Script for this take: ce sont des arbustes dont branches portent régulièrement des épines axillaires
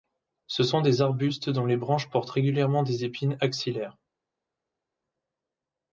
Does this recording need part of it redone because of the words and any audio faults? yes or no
yes